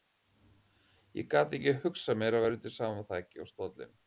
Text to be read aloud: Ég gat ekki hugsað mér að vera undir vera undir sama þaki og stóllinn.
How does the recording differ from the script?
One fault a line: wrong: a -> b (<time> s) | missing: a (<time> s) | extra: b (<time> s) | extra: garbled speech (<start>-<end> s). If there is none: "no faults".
missing: vera undir (2.8 s)